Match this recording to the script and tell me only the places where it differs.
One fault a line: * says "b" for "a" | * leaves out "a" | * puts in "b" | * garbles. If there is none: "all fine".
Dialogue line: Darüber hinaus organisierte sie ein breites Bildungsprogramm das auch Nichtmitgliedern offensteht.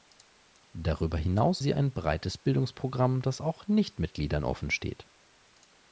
* leaves out "organisierte"